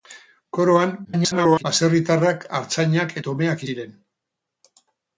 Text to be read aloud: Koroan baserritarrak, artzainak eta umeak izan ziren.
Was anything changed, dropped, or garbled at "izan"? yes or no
yes